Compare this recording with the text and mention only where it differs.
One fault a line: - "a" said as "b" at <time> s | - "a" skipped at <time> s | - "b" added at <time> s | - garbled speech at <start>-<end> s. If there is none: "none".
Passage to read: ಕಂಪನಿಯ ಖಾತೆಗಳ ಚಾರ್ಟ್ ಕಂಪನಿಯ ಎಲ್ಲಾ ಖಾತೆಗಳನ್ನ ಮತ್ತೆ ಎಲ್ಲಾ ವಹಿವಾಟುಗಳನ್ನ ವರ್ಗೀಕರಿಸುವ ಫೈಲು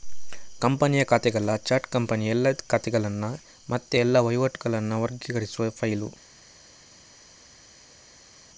none